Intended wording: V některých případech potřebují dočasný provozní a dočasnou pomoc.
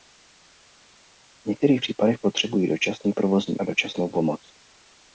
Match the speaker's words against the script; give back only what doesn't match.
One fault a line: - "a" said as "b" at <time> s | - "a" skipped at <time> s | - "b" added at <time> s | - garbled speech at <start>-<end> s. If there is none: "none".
none